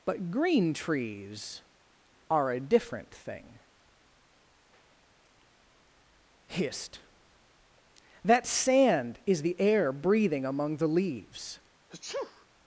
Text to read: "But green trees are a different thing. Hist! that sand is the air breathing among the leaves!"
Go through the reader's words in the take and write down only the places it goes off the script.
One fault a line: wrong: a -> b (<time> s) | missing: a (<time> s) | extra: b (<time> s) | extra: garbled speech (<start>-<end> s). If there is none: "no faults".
no faults